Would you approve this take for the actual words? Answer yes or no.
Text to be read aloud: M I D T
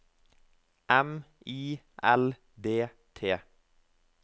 no